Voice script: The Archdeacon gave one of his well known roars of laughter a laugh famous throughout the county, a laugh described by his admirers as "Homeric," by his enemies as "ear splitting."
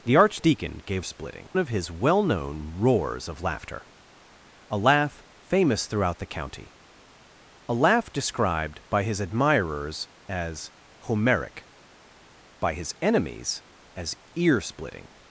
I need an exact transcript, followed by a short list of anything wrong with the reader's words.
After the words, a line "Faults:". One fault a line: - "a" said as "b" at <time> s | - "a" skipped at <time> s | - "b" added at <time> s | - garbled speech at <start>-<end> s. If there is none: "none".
The Archdeacon gave splitting of his well known roars of laughter a laugh famous throughout the county, a laugh described by his admirers as "Homeric," by his enemies as "ear splitting."
Faults:
- "one" said as "splitting" at 1.0 s